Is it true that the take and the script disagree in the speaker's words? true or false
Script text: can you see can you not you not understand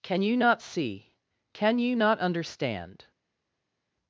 true